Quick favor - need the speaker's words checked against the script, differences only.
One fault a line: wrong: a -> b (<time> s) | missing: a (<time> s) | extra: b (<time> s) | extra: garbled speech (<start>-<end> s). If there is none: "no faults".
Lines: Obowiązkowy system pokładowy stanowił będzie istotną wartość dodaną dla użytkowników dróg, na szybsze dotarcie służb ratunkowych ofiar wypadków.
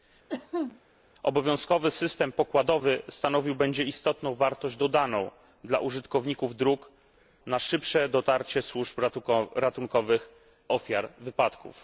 no faults